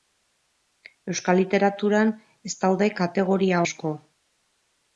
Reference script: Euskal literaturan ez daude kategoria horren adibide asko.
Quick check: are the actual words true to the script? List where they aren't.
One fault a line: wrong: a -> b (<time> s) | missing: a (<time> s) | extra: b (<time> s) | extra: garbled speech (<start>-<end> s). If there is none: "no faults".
missing: horren adibide (3.6 s)